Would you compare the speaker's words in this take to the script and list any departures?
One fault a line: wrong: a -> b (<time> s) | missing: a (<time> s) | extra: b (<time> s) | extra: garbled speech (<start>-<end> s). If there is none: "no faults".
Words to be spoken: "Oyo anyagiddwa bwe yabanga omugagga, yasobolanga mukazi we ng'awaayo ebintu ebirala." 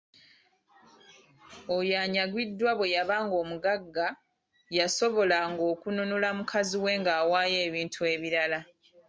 extra: okununula (5.7 s)